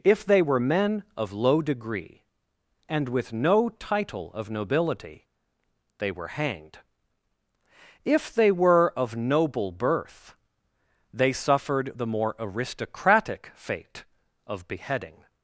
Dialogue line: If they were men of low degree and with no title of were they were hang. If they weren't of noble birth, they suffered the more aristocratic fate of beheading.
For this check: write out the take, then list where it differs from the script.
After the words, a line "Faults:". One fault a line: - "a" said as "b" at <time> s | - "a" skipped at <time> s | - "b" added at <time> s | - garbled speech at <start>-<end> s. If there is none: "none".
If they were men of low degree and with no title of nobility they were hanged. If they were of noble birth, they suffered the more aristocratic fate of beheading.
Faults:
- "were" said as "nobility" at 4.5 s
- "hang" said as "hanged" at 6.3 s
- "weren't" said as "were" at 8.5 s